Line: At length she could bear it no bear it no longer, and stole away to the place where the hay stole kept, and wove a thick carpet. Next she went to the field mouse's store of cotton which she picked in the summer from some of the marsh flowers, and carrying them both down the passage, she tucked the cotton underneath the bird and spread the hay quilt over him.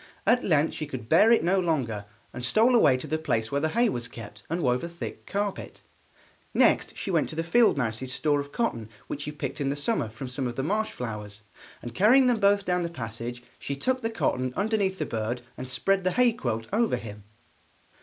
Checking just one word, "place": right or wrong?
right